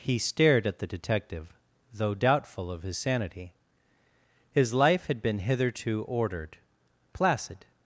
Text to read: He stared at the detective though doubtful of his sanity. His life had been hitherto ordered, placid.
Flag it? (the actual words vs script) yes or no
no